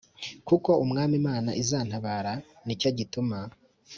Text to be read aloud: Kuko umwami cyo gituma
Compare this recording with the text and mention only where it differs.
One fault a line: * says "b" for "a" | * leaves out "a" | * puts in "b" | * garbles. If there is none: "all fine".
* puts in "imana izantabara ni"